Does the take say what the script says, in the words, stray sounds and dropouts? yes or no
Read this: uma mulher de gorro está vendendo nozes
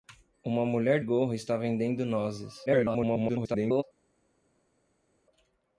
no